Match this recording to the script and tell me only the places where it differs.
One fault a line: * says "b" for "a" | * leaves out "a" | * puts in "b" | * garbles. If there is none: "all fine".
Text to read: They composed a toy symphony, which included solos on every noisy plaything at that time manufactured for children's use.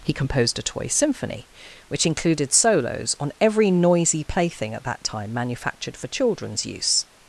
* says "He" for "They"